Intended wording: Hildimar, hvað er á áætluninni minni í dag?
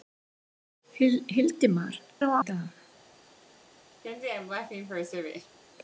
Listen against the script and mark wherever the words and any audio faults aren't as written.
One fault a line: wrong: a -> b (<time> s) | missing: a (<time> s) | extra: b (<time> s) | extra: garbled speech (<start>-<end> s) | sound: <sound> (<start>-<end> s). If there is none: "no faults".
missing: hvað (2.0 s)
missing: áætluninni minni (2.3 s)
sound: laugh (4.0-5.6 s)